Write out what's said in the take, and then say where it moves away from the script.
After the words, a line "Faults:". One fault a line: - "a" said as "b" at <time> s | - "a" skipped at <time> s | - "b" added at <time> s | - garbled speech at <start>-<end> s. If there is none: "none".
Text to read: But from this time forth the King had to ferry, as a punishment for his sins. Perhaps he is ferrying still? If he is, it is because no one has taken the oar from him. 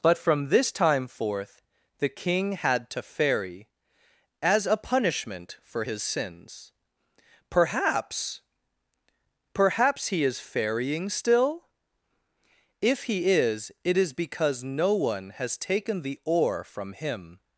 But from this time forth the King had to ferry, as a punishment for his sins. Perhaps Perhaps he is ferrying still? If he is, it is because no one has taken the oar from him.
Faults:
- "Perhaps" added at 9.5 s